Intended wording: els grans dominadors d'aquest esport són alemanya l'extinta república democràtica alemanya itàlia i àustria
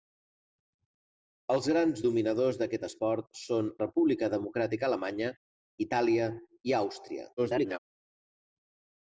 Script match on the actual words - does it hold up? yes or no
no